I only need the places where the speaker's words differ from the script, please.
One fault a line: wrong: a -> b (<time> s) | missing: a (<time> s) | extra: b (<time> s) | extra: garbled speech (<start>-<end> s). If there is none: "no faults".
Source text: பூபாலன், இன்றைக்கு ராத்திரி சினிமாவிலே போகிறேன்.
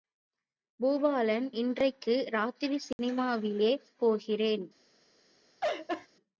no faults